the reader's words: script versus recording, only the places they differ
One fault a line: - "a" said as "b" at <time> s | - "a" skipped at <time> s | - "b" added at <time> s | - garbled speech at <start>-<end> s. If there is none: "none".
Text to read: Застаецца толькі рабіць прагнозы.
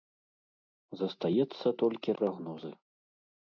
- "рабіць" skipped at 2.2 s